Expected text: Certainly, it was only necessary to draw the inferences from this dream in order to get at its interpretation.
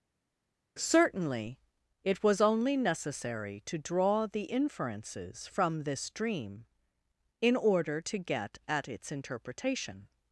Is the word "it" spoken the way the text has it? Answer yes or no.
yes